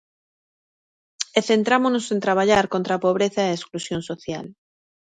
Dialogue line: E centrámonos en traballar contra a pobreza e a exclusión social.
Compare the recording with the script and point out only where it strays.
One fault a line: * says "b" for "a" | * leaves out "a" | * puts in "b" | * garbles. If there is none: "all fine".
all fine